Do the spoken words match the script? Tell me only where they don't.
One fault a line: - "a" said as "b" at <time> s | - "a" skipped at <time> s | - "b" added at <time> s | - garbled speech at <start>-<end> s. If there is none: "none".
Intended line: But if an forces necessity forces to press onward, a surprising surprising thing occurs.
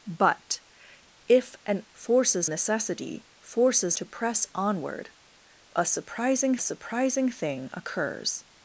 none